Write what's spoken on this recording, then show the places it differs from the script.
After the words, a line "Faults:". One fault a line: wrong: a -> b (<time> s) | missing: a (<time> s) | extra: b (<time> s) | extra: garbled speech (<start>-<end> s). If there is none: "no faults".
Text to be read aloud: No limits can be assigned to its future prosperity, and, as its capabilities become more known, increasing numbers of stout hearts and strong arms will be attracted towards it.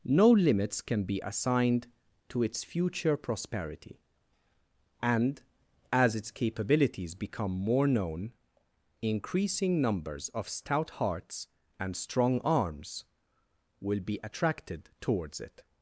No limits can be assigned to its future prosperity, and, as its capabilities become more known, increasing numbers of stout hearts and strong arms will be attracted towards it.
Faults:
no faults